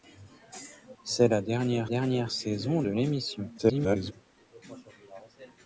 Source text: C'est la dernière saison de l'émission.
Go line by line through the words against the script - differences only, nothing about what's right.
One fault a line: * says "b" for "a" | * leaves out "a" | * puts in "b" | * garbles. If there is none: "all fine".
* puts in "dernière"
* garbles